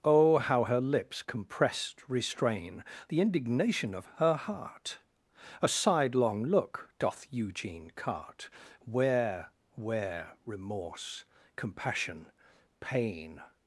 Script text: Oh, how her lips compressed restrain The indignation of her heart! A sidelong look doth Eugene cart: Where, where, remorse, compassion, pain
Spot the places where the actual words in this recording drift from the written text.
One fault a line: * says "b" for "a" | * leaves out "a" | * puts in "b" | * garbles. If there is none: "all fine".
all fine